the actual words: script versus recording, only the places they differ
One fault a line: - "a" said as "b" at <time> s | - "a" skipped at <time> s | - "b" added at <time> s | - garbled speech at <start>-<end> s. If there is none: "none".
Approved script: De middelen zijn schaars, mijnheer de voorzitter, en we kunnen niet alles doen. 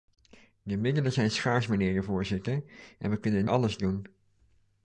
- "niet" skipped at 3.5 s